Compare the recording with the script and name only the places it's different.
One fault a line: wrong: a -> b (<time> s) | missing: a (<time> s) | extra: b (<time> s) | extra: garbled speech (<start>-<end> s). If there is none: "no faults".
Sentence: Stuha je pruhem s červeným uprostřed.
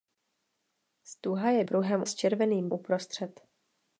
no faults